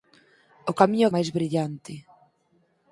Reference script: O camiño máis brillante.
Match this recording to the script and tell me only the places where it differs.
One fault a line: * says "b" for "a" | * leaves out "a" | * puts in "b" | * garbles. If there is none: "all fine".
all fine